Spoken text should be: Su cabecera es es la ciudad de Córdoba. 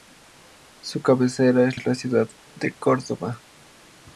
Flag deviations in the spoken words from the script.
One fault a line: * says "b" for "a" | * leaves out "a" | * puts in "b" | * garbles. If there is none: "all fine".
all fine